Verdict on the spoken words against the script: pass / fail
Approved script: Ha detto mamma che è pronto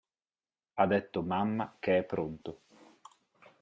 pass